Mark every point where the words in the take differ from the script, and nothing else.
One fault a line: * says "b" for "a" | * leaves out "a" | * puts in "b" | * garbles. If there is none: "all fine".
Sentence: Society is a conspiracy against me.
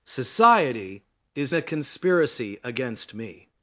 all fine